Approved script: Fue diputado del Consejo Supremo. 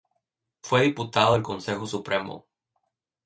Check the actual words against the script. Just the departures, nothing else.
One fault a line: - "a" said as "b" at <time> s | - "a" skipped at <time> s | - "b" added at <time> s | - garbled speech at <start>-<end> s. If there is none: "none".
none